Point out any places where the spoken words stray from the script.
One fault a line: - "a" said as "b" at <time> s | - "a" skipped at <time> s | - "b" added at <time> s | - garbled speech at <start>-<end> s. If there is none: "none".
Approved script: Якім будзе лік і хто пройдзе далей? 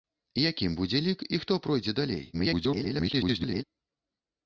- garbled speech at 2.3-3.6 s